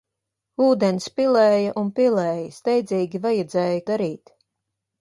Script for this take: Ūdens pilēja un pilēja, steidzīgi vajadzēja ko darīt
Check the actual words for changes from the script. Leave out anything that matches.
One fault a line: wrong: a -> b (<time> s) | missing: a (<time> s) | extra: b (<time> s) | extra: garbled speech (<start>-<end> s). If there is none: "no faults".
missing: ko (3.8 s)